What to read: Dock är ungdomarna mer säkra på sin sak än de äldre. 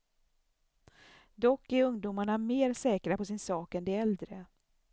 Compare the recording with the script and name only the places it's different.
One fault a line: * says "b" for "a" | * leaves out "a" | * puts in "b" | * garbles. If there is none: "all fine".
all fine